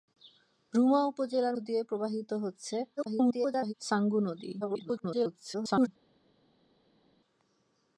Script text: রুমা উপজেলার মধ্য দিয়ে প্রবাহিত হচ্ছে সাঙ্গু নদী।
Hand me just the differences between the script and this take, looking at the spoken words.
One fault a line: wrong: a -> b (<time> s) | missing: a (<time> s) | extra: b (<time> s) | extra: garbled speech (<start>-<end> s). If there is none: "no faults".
missing: মধ্য (1.6 s)
extra: garbled speech (3.0-3.7 s)
extra: garbled speech (4.6-5.9 s)